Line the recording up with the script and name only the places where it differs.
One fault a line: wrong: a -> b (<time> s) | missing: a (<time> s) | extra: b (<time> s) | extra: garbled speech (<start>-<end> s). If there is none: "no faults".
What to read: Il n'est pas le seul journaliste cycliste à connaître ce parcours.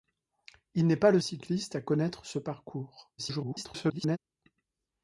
missing: seul journaliste (1.2 s)
extra: garbled speech (3.2-4.2 s)